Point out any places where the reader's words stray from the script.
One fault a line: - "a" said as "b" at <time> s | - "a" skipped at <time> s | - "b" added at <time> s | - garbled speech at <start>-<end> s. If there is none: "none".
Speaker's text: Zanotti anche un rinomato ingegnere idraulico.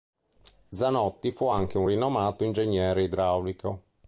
- "fu" added at 1.3 s